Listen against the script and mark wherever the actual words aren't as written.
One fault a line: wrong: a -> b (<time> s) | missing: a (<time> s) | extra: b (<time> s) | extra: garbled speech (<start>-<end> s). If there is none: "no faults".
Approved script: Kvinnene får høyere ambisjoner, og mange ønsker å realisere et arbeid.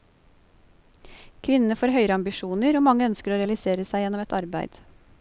extra: seg gjennom (3.9 s)